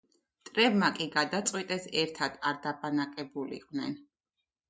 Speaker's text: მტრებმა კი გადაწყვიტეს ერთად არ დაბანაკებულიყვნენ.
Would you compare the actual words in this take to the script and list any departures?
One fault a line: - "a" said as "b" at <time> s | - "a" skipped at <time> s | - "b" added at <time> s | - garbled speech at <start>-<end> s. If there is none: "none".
none